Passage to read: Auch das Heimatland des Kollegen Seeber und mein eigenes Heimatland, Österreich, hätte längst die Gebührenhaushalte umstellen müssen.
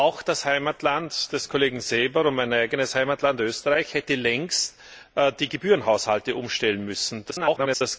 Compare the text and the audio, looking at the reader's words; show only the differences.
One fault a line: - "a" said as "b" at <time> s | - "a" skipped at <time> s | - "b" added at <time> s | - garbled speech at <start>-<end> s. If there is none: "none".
- garbled speech at 7.3-7.8 s